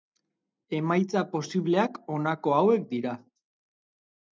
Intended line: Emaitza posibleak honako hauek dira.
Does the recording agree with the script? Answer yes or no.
yes